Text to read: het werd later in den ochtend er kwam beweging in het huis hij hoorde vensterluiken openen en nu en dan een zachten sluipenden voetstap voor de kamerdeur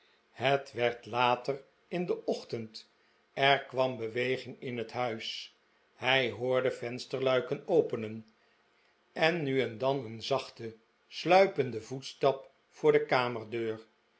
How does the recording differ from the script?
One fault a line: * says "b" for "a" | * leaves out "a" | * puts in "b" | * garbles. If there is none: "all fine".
all fine